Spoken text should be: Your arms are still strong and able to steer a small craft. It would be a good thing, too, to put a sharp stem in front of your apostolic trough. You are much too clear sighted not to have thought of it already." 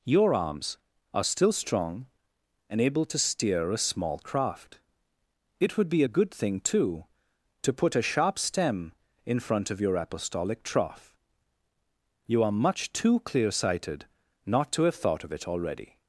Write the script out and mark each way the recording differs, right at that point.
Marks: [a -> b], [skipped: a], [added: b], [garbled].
Your arms are still strong and able to steer a small craft. It would be a good thing, too, to put a sharp stem in front of your apostolic trough. You are much too clear sighted not to have thought of it already."